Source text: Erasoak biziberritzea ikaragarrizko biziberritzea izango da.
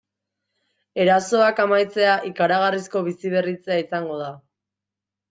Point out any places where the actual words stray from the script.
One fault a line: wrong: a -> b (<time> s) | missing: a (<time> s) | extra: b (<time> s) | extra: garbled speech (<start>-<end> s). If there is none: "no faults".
wrong: biziberritzea -> amaitzea (1.6 s)